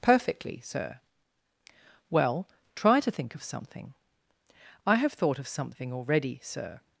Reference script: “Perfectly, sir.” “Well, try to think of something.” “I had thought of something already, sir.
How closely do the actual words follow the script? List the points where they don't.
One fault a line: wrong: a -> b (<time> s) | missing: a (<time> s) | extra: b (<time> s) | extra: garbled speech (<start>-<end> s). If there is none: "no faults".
wrong: had -> have (5.0 s)